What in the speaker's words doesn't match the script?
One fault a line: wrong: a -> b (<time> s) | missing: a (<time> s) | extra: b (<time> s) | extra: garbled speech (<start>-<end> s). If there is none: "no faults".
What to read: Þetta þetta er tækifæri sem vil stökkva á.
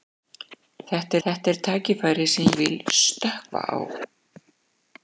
no faults